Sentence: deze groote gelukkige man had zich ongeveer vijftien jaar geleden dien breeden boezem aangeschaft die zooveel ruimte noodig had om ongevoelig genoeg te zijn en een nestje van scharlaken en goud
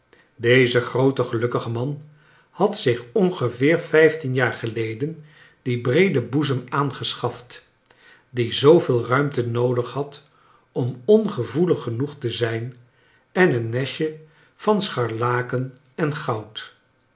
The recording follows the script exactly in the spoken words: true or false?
true